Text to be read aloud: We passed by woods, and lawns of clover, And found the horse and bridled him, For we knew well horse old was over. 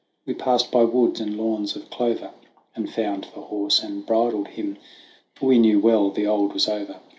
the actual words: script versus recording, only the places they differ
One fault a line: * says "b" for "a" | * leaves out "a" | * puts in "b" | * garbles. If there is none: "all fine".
* says "the" for "horse"